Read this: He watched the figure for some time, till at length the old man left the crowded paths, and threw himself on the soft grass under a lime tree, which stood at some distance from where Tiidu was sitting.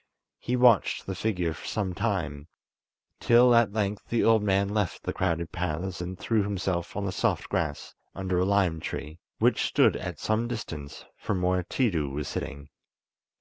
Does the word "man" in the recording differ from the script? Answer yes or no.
no